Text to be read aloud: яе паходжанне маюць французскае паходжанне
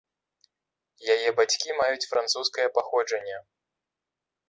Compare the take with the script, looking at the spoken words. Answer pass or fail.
fail